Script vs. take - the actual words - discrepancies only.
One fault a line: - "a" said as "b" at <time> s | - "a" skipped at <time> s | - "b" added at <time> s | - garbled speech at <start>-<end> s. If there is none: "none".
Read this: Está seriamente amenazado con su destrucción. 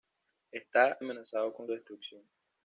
- "seriamente" skipped at 1.0 s
- "su" skipped at 1.7 s